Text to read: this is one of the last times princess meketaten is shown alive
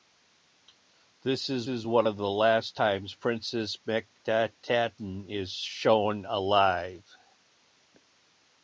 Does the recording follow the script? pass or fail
fail